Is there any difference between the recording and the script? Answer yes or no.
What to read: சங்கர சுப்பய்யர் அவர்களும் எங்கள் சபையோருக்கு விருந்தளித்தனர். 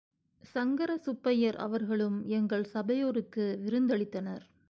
no